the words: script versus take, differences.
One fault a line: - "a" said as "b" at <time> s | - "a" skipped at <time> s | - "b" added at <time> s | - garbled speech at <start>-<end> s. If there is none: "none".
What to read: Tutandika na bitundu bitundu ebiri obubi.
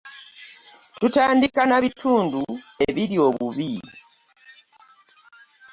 - "bitundu" skipped at 2.4 s